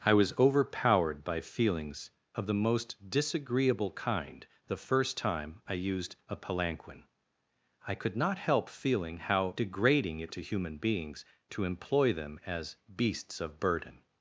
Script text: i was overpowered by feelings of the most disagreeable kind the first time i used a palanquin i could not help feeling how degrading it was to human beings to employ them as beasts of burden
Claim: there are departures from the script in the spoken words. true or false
true